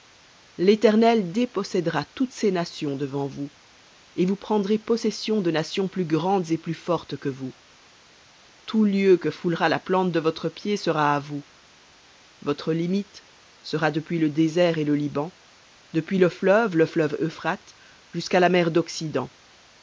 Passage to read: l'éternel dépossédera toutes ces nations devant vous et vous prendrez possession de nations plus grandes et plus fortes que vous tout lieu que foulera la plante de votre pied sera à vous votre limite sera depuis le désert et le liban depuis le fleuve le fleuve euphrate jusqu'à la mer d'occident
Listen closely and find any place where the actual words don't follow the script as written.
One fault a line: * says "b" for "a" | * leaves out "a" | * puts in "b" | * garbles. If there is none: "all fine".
all fine